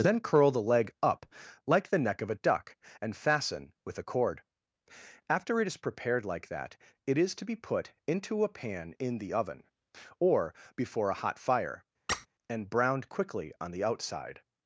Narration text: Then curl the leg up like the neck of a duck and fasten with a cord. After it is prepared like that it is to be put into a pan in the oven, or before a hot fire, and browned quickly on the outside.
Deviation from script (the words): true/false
false